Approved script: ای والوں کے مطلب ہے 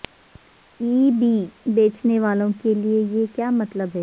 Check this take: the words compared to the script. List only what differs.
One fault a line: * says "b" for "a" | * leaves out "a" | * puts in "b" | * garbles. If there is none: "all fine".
* puts in "بی بیچنے"
* puts in "لئے یہ کیا"